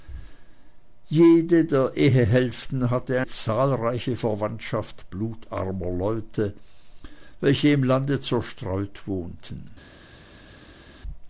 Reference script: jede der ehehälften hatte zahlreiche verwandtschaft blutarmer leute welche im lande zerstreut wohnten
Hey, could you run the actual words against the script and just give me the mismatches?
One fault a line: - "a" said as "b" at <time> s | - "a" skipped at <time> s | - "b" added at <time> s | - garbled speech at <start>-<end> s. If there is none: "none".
none